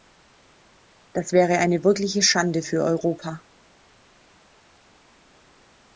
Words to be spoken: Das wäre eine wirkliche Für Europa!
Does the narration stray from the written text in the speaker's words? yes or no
yes